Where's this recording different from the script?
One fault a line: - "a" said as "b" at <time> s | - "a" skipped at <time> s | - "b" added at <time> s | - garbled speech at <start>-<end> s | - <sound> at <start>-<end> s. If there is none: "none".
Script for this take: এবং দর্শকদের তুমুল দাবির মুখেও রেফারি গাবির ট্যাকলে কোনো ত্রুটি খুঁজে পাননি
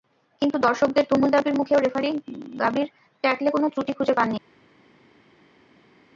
- "এবং" said as "কিন্তু" at 0.4 s